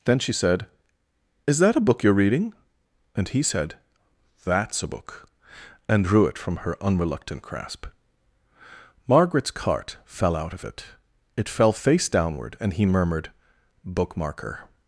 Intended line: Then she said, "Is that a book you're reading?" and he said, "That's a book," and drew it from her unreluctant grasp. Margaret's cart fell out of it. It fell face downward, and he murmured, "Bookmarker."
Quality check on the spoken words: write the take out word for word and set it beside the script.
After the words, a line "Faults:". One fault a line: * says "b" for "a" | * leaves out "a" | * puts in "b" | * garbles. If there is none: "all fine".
Then she said, "Is that a book you're reading?" and he said, "That's a book," and drew it from her unreluctant grasp. Margaret's cart fell out of it. It fell face downward, and he murmured, "Bookmarker."
Faults:
all fine